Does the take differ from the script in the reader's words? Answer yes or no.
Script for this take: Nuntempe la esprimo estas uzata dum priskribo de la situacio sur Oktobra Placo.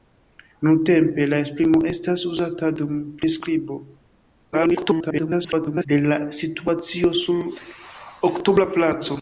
yes